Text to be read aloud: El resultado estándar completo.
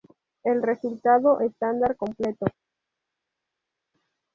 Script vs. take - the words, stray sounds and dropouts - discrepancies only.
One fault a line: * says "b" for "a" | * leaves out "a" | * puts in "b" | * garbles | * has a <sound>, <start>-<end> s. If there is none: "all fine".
all fine